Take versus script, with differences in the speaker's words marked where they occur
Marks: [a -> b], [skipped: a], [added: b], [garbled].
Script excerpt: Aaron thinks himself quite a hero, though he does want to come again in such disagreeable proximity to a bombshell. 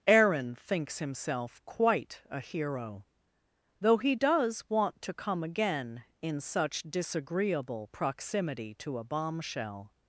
Aaron thinks himself quite a hero, though he does want to come again in such disagreeable proximity to a bombshell.